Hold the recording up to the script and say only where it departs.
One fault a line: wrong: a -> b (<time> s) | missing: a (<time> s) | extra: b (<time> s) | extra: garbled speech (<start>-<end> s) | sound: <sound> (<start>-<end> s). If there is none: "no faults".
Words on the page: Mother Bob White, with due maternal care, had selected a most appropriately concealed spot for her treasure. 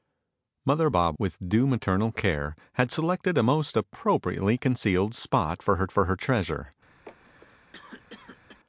missing: White (1.2 s)
extra: for her (5.9 s)
sound: cough (7.0-8.6 s)